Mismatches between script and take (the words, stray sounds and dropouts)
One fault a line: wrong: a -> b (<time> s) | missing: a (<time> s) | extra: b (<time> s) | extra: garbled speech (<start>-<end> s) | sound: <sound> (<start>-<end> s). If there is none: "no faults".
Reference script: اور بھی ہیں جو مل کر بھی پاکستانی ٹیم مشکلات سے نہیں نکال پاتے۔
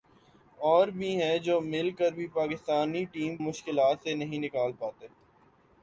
no faults